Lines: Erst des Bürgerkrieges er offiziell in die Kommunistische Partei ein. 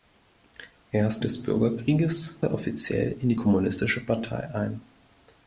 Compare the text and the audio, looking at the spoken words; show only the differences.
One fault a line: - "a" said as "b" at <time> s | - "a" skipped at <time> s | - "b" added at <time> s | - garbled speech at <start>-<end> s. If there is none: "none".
none